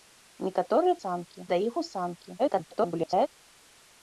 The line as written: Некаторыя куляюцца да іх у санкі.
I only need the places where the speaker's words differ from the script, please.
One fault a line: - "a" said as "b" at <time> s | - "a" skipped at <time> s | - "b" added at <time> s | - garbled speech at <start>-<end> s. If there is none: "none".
- "куляюцца" said as "санкі" at 1.0 s
- garbled speech at 2.4-3.3 s